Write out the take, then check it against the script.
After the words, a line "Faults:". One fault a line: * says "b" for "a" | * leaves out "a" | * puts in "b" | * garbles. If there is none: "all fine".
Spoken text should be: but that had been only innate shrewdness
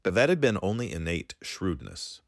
but that had been only innate shrewdness
Faults:
all fine